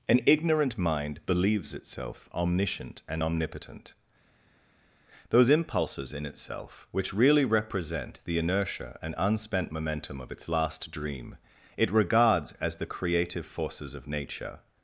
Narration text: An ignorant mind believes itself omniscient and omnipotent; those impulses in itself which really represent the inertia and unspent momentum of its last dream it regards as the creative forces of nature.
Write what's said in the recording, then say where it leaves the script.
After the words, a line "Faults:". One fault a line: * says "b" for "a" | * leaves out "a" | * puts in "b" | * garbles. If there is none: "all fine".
An ignorant mind believes itself omniscient and omnipotent; those impulses in itself which really represent the inertia and unspent momentum of its last dream it regards as the creative forces of nature.
Faults:
all fine